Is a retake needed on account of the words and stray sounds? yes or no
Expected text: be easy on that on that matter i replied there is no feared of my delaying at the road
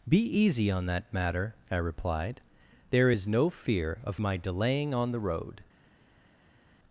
yes